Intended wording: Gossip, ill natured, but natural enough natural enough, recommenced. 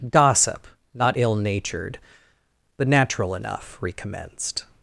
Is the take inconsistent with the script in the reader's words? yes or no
yes